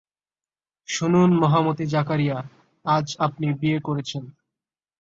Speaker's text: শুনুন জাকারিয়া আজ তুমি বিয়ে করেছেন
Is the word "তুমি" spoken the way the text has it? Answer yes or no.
no